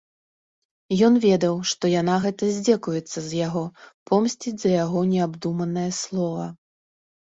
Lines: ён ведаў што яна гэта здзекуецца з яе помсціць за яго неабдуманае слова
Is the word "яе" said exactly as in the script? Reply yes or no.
no